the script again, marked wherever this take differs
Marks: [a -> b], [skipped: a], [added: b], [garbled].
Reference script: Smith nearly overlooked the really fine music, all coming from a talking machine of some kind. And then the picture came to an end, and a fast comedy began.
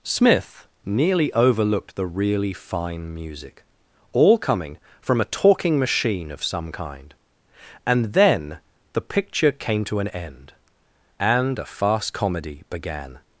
Smith nearly overlooked the really fine music, all coming from a talking machine of some kind. And then the picture came to an end, and a fast comedy began.